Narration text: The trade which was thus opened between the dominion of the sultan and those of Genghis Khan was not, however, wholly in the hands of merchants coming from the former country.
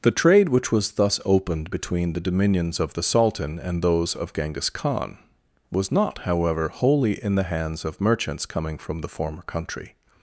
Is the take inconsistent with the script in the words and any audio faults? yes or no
yes